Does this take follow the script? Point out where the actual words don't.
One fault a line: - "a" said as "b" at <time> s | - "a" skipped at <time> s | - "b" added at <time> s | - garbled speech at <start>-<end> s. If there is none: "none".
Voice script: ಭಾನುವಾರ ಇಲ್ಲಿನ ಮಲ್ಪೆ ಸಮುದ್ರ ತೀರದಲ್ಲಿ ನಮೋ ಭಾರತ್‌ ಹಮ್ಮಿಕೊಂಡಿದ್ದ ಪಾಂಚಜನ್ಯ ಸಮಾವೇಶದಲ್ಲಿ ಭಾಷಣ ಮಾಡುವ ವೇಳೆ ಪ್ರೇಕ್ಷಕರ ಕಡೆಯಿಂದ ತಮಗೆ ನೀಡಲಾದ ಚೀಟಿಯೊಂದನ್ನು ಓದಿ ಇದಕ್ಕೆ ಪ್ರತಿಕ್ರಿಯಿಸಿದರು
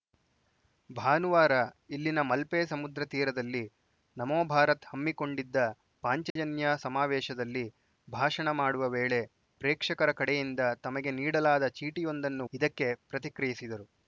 - "ಓದಿ" skipped at 12.4 s